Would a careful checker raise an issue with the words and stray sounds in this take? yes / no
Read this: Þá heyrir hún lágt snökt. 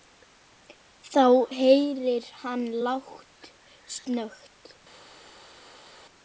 yes